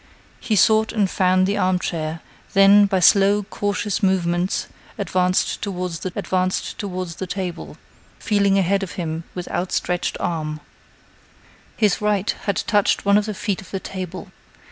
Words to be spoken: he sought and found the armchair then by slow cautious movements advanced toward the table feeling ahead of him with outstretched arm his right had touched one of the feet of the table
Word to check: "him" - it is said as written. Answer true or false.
true